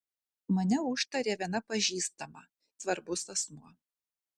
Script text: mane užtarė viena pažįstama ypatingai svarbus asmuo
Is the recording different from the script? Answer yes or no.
yes